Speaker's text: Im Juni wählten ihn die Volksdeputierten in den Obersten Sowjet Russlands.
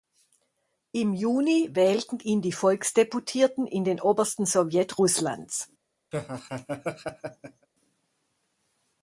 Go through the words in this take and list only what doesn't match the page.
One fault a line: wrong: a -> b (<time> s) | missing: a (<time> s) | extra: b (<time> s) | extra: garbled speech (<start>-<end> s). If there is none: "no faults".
no faults